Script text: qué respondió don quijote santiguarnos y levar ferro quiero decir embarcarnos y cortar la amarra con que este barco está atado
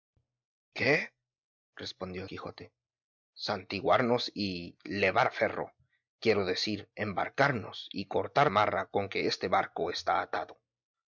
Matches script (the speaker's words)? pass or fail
fail